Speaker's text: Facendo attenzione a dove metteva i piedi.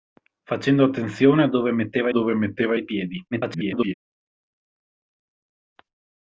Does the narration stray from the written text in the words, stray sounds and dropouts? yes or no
yes